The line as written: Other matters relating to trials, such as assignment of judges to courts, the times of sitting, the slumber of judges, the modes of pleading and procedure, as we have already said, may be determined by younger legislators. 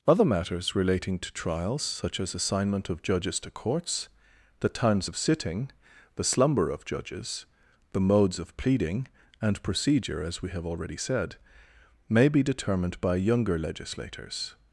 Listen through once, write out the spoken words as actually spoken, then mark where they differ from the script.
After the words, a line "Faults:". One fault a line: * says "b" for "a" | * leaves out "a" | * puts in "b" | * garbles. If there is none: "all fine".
Other matters relating to trials, such as assignment of judges to courts, the times of sitting, the slumber of judges, the modes of pleading and procedure, as we have already said, may be determined by younger legislators.
Faults:
all fine